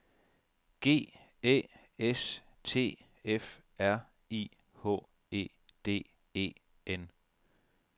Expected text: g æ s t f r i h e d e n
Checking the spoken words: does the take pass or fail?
pass